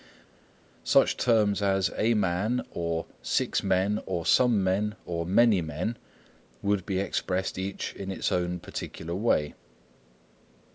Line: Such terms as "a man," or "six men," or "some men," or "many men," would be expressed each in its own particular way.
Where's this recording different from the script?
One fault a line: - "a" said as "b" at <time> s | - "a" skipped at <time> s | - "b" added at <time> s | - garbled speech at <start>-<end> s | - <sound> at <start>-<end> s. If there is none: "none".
none